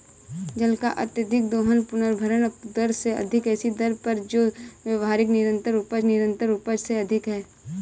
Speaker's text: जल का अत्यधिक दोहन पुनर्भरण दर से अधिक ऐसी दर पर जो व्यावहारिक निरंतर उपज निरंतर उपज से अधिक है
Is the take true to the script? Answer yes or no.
yes